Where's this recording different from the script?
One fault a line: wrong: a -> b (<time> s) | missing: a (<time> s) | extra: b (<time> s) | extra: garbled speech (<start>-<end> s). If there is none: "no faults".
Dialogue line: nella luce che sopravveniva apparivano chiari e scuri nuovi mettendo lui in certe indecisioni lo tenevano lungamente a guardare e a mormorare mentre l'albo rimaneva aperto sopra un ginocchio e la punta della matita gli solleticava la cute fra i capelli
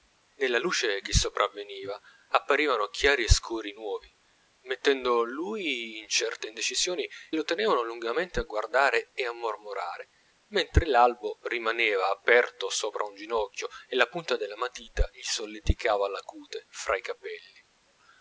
no faults